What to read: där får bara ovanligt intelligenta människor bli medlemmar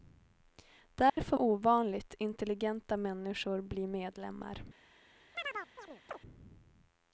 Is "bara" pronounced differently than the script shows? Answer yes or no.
yes